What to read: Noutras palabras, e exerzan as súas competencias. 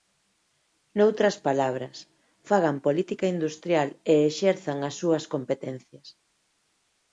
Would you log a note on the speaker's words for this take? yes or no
yes